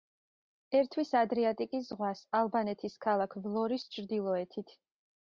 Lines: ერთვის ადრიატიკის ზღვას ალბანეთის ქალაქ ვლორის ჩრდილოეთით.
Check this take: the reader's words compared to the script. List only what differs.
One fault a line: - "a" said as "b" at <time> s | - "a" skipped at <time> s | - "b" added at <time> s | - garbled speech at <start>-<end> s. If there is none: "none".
none